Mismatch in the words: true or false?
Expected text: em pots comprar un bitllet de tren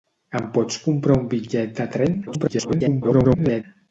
true